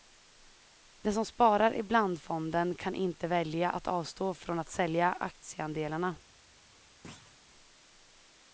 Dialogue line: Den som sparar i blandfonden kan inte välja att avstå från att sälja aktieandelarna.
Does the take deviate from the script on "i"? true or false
false